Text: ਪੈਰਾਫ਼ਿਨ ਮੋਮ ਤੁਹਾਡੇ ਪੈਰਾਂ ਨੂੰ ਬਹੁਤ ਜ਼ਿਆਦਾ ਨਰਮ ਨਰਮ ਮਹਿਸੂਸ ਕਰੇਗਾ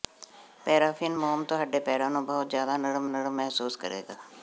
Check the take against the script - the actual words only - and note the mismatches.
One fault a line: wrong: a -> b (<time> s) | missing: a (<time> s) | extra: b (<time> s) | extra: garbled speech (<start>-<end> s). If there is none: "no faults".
no faults